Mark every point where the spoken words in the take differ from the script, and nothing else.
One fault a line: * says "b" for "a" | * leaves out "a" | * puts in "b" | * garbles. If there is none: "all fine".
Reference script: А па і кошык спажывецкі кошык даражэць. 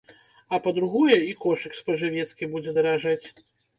* puts in "другое"
* says "будзе" for "кошык"